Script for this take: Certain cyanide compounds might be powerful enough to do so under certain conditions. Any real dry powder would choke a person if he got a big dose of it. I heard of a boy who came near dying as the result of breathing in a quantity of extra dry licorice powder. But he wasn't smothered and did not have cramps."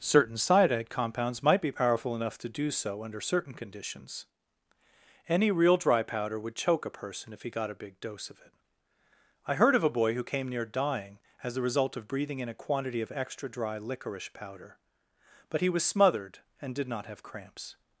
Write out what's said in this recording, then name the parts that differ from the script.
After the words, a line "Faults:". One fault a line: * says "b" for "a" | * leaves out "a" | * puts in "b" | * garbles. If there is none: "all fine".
Certain cyanide compounds might be powerful enough to do so under certain conditions. Any real dry powder would choke a person if he got a big dose of it. I heard of a boy who came near dying as the result of breathing in a quantity of extra dry licorice powder. But he was smothered and did not have cramps."
Faults:
* says "was" for "wasn't"